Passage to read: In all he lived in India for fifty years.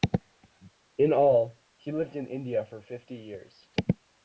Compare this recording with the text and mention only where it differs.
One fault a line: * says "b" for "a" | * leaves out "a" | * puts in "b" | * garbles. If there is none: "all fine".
all fine